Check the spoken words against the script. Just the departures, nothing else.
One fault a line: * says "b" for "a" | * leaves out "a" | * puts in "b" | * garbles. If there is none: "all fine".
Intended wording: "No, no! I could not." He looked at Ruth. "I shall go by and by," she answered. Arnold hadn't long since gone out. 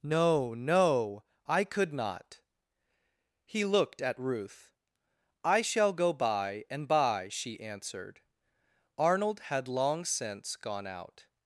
* says "had" for "hadn't"